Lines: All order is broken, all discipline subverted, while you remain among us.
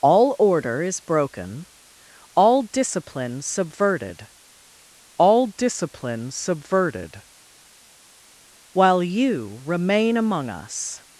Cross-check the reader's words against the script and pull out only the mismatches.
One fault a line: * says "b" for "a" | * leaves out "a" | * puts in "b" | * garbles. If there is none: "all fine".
* puts in "all discipline subverted"